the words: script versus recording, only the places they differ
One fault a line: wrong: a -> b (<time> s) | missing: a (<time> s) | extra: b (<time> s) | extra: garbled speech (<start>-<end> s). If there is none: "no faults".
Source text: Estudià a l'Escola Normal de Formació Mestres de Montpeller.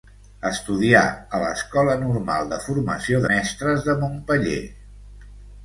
no faults